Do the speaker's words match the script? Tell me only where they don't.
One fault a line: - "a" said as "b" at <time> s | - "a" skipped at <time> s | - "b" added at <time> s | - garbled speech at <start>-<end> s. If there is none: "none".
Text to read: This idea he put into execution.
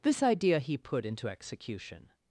none